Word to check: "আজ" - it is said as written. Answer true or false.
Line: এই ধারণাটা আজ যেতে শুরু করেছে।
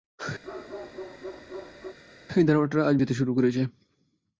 true